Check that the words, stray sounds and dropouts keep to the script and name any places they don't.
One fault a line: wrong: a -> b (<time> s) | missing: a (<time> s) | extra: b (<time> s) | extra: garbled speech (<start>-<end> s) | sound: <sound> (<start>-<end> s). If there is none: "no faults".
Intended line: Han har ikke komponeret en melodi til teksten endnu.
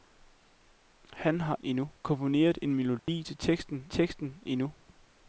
wrong: ikke -> endnu (1.6 s)
sound: dropout (3.0-3.1 s)
extra: teksten (3.9 s)